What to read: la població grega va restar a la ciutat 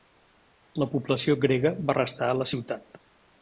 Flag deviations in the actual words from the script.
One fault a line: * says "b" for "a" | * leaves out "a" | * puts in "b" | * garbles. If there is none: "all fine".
all fine